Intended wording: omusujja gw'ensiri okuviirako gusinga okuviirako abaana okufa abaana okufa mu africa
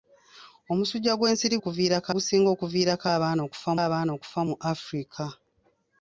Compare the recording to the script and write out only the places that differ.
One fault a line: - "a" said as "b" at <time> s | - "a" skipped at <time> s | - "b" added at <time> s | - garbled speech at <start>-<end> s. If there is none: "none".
none